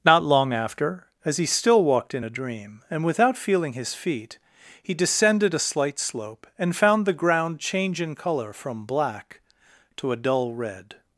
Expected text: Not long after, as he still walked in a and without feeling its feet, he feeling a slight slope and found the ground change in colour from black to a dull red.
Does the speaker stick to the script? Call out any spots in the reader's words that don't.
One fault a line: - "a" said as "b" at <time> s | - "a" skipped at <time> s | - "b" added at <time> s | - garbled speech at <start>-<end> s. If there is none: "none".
- "dream" added at 2.3 s
- "its" said as "his" at 3.7 s
- "feeling" said as "descended" at 4.9 s